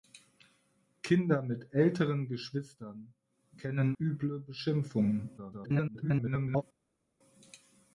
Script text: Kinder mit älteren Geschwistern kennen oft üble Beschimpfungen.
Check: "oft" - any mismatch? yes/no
yes